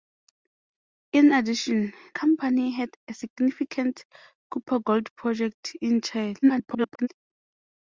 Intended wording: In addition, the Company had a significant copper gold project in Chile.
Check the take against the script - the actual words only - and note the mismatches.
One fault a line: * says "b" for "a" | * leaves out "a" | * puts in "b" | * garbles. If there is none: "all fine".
* leaves out "the"
* garbles